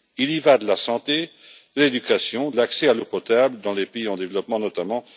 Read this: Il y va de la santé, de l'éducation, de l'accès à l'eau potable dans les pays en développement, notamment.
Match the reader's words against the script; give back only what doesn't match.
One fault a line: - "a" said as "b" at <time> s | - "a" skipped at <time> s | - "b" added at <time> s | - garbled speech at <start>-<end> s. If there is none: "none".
- "de" skipped at 2.5 s